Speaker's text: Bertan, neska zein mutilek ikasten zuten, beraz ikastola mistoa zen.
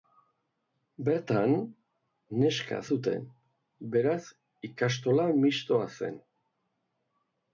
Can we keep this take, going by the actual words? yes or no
no